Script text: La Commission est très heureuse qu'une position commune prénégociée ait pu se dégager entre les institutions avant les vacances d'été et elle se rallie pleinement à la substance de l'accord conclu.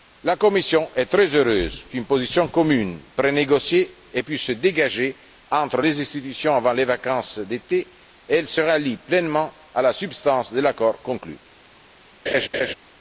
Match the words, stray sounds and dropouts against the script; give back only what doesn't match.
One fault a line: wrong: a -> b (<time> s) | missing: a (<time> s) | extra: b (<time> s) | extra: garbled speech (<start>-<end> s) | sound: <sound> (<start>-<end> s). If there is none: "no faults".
sound: laugh (12.3-12.7 s)